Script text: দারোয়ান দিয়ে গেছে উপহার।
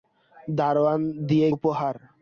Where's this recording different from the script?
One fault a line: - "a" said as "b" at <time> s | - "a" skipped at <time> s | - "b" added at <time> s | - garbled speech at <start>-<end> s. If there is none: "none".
- "গেছে" skipped at 1.5 s